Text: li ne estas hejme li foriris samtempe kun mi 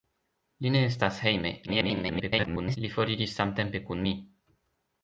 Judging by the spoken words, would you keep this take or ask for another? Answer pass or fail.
fail